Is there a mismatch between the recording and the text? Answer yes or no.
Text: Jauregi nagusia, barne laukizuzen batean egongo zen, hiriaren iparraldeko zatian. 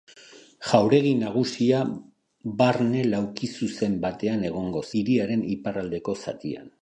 yes